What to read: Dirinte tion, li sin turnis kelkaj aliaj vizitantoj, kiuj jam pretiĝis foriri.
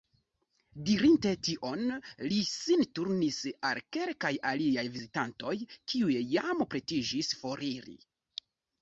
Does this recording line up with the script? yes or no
no